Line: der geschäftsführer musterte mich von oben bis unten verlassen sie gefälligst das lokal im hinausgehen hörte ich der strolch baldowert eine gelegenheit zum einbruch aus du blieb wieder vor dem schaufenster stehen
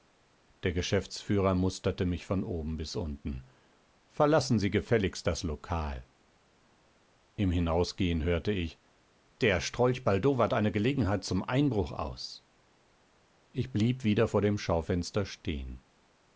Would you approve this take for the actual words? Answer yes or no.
no